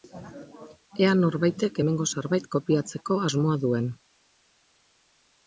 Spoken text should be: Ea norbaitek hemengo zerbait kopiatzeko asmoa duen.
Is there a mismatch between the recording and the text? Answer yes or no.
no